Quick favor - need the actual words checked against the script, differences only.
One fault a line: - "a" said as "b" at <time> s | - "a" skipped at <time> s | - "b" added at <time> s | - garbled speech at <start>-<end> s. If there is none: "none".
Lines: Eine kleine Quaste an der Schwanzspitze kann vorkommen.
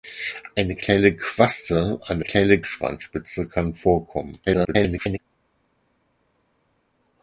- "der" said as "kleine" at 2.2 s
- garbled speech at 4.5-5.2 s